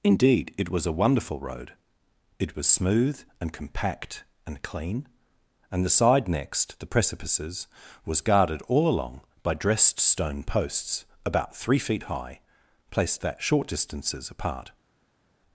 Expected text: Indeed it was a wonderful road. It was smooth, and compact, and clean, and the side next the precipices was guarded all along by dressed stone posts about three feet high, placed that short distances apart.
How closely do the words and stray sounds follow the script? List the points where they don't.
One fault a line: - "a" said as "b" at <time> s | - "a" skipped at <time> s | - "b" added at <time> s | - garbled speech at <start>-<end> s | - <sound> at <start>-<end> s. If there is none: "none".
none